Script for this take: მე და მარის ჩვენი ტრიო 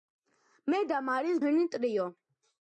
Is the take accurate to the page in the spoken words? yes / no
yes